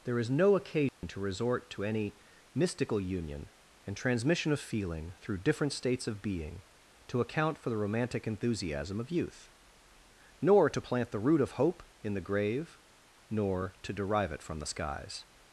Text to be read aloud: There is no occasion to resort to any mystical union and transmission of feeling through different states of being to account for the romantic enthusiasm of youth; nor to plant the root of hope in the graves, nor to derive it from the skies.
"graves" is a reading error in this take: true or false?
true